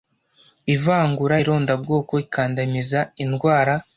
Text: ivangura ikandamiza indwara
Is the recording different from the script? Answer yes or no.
yes